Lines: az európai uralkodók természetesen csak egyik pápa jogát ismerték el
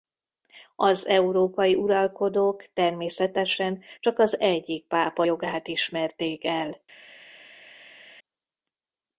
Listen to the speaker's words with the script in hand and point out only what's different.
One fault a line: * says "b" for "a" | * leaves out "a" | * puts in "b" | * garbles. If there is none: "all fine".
* puts in "az"